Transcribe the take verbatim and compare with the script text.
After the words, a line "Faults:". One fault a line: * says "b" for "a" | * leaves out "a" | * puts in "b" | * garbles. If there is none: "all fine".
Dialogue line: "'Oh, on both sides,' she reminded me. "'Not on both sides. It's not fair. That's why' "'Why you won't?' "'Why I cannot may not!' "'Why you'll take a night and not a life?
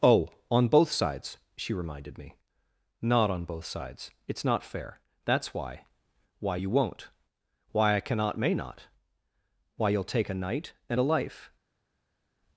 "'Oh, on both sides,' she reminded me. "'Not on both sides. It's not fair. That's why' "'Why you won't?' "'Why I cannot may not!' "'Why you'll take a night and a life?
Faults:
* leaves out "not"